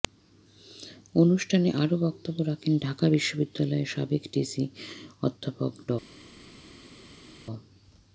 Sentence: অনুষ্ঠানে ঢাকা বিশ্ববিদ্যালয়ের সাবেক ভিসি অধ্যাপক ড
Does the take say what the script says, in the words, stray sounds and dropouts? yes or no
no